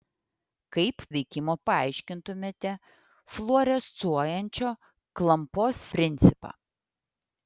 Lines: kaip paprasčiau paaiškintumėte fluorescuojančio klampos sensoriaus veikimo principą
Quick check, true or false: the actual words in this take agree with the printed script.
false